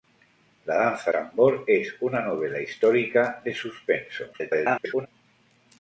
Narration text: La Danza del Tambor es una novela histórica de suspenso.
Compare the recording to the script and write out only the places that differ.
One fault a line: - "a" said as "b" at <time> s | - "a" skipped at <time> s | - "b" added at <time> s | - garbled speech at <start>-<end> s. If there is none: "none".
- "del" skipped at 1.1 s
- garbled speech at 4.3-5.1 s